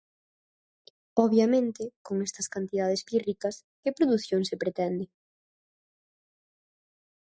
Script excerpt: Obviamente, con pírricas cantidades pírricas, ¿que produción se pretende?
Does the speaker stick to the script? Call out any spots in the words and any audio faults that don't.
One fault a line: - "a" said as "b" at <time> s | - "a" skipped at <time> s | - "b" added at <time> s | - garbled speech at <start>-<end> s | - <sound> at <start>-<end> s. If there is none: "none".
- "pírricas" said as "estas" at 2.2 s